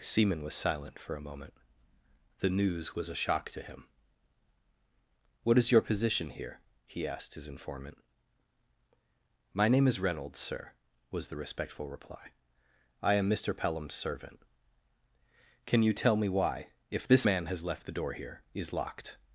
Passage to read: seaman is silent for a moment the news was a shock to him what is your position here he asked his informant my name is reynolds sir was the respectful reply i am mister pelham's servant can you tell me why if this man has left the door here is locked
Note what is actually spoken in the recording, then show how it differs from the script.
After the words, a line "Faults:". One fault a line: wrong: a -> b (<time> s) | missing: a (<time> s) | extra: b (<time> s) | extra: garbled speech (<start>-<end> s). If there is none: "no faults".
seaman was silent for a moment the news was a shock to him what is your position here he asked his informant my name is reynolds sir was the respectful reply i am mister pelham's servant can you tell me why if this man has left the door here is locked
Faults:
wrong: is -> was (0.4 s)